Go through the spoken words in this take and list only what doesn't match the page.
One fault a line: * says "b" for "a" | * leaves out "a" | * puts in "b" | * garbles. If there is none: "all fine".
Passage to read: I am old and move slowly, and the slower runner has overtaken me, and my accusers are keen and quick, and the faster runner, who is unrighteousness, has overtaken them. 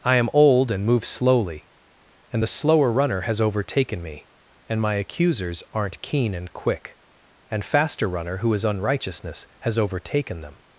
* says "aren't" for "are"
* leaves out "the"